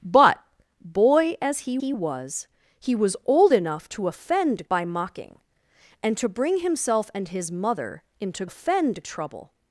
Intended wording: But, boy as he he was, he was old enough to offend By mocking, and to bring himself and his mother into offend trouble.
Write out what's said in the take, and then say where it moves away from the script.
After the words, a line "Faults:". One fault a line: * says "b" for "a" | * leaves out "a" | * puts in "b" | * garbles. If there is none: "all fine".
But, boy as he he was, he was old enough to offend By mocking, and to bring himself and his mother into offend trouble.
Faults:
all fine